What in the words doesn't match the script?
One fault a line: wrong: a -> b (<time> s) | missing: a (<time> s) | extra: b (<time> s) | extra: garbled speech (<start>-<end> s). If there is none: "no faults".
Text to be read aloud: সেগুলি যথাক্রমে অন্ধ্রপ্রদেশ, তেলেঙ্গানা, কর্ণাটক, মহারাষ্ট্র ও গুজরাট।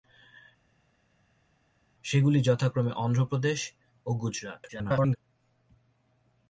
missing: তেলেঙ্গানা কর্ণাটক মহারাষ্ট্র (3.6 s)
extra: garbled speech (4.7-5.2 s)